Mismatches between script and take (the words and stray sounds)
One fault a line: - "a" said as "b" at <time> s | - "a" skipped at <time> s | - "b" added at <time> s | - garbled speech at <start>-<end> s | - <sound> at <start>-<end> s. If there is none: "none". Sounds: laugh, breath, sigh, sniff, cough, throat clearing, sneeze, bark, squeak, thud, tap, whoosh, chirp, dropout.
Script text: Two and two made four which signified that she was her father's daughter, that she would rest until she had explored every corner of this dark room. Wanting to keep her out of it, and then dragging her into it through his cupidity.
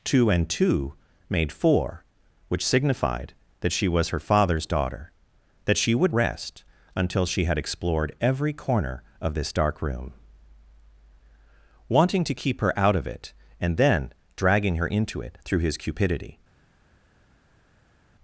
none